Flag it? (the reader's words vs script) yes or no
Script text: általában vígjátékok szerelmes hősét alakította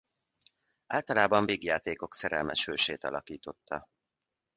no